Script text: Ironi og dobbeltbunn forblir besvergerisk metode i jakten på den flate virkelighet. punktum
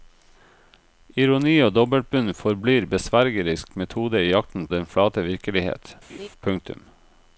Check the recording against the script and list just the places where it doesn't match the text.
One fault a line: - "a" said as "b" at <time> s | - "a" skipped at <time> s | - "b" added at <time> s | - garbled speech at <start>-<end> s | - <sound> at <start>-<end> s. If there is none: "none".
- "på" skipped at 4.7 s
- laugh at 6.1-6.3 s